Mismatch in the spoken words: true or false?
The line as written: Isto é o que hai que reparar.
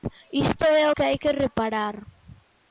false